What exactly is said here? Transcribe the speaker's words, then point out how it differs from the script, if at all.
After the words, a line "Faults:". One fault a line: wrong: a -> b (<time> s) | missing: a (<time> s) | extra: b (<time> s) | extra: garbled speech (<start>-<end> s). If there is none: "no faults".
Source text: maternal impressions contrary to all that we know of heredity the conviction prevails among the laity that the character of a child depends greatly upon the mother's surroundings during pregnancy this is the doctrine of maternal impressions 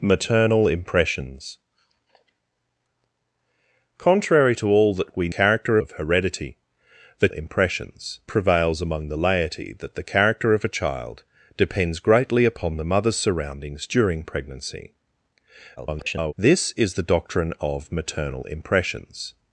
maternal impressions contrary to all that we character of heredity the impressions prevails among the laity that the character of a child depends greatly upon the mother's surroundings during pregnancy [garbled] this is the doctrine of maternal impressions
Faults:
wrong: know -> character (5.3 s)
wrong: conviction -> impressions (7.3 s)
extra: garbled speech (15.8-16.3 s)